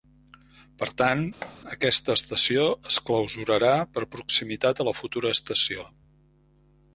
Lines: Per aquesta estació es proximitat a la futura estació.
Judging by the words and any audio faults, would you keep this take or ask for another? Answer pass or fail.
fail